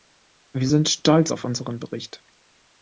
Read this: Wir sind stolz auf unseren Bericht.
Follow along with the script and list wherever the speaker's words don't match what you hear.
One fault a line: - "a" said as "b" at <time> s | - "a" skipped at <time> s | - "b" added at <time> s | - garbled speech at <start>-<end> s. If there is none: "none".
none